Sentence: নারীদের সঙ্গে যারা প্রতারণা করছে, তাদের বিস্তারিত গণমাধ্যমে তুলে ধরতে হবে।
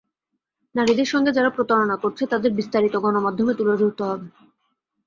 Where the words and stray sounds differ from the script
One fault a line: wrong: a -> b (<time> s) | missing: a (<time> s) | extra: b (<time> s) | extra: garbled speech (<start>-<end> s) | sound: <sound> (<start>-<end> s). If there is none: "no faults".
no faults